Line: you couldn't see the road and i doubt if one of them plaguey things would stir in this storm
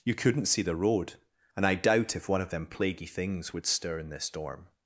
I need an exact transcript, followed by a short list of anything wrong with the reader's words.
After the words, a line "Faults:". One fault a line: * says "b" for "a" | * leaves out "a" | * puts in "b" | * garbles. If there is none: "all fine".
you couldn't see the road and i doubt if one of them plaguey things would stir in this storm
Faults:
all fine